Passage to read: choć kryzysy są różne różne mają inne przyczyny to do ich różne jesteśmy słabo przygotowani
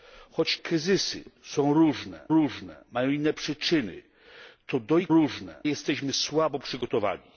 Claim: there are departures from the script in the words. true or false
false